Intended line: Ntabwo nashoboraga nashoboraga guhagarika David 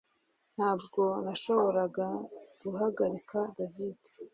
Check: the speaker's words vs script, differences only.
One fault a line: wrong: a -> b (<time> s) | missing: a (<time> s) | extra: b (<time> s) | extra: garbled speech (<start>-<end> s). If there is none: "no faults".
missing: nashoboraga (2.1 s)